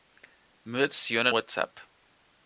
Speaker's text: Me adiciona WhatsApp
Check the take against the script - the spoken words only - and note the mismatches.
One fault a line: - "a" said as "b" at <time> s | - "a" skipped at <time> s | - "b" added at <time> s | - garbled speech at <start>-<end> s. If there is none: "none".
none